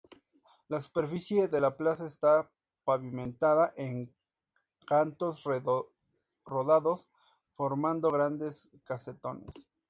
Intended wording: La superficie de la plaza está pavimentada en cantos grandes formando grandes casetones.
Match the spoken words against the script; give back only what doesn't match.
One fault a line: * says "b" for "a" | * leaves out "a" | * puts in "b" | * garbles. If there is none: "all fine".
* says "rodados" for "grandes"